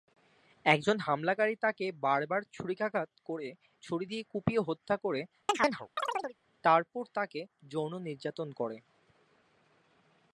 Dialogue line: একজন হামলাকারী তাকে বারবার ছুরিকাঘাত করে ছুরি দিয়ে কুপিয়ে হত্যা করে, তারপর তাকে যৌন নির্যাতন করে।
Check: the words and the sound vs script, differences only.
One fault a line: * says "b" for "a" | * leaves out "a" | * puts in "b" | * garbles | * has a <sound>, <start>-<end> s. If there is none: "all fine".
* has a chirp, 5.5-6.4 s